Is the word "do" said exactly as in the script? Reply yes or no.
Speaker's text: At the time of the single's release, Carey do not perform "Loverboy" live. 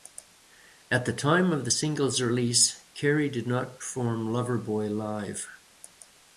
no